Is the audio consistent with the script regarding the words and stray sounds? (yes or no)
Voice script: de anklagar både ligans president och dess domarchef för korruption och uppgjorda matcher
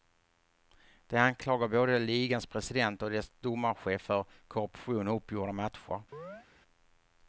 no